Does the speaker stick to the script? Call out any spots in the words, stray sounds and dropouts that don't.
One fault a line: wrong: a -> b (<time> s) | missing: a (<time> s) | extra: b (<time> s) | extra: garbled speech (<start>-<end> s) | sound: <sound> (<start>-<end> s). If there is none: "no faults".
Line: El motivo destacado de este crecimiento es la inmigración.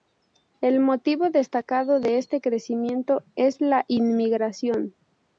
no faults